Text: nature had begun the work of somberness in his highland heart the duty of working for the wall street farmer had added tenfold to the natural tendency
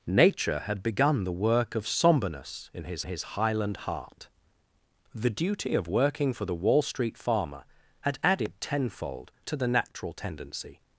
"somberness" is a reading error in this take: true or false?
false